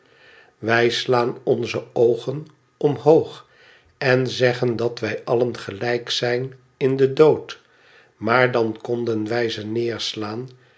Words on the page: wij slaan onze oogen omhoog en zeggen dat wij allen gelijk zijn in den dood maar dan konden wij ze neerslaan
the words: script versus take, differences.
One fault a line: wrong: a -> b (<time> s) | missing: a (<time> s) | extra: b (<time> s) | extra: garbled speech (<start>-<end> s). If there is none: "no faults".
no faults